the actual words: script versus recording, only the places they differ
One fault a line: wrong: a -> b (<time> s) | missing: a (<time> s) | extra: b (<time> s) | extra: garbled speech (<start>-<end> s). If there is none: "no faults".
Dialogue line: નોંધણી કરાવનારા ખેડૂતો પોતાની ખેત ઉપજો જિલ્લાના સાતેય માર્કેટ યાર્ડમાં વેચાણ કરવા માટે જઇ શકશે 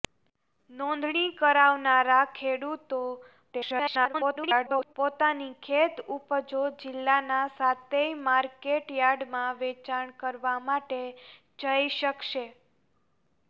extra: garbled speech (3.5-4.9 s)